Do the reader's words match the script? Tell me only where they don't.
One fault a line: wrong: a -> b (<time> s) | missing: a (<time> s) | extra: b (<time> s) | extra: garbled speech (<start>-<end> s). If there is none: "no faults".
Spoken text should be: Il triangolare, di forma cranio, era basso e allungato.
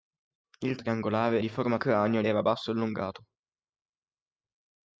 no faults